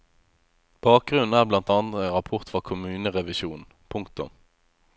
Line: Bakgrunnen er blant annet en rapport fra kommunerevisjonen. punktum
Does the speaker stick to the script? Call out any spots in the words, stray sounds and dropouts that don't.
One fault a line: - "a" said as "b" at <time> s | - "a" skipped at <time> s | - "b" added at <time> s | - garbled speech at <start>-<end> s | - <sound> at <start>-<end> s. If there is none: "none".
none